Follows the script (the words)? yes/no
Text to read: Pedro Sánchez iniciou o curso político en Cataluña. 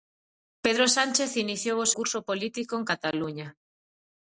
yes